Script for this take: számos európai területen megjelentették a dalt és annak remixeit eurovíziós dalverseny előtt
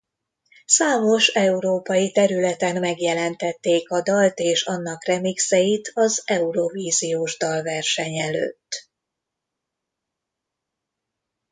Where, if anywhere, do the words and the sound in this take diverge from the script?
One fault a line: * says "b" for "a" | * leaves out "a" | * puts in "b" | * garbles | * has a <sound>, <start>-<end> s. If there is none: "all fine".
* puts in "az"